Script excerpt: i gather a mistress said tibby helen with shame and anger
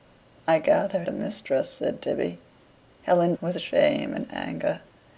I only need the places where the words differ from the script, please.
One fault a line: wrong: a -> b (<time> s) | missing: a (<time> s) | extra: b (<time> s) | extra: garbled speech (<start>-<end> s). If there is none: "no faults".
no faults